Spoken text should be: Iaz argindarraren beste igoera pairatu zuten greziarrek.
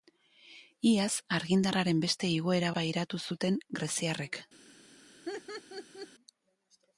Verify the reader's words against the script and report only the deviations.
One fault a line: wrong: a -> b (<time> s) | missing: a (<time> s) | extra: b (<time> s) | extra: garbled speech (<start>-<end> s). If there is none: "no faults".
no faults